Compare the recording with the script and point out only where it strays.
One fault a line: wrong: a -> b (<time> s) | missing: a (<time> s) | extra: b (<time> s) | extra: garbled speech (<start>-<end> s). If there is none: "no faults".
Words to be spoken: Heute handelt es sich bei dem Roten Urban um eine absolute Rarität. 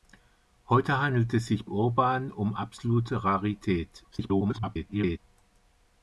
missing: bei dem Roten (1.7 s)
missing: eine (2.5 s)
extra: garbled speech (4.1-5.2 s)